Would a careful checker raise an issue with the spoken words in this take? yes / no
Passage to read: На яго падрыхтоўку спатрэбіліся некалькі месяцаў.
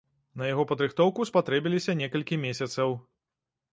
no